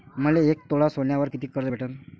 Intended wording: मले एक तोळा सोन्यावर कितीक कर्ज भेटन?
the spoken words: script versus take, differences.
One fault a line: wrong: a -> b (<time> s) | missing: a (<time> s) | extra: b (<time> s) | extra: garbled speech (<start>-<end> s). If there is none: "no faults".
no faults